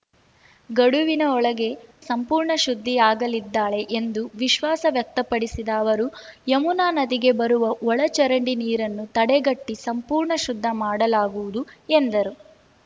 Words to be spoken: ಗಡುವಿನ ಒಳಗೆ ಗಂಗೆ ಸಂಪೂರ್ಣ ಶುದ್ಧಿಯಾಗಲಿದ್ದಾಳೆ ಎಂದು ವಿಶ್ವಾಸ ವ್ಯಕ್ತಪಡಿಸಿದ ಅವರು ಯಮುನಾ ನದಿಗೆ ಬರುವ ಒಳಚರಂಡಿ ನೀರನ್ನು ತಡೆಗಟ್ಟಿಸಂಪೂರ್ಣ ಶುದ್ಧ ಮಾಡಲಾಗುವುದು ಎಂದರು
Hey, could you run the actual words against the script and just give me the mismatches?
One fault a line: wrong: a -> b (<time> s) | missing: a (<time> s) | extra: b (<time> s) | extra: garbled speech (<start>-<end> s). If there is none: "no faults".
missing: ಗಂಗೆ (1.7 s)